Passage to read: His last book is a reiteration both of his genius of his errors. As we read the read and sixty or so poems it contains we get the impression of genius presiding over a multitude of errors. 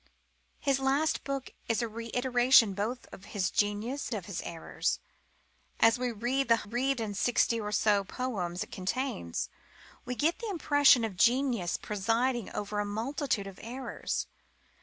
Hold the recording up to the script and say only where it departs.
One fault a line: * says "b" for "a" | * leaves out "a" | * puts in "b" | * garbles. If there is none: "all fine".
all fine